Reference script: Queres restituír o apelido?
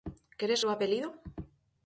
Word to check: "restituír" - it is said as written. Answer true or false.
false